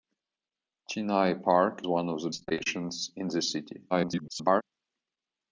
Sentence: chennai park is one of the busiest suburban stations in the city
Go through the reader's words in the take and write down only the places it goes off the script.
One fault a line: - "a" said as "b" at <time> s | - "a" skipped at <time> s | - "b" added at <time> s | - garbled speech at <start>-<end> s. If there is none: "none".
- "is" skipped at 1.8 s
- "busiest suburban" skipped at 2.3 s
- garbled speech at 3.9-4.6 s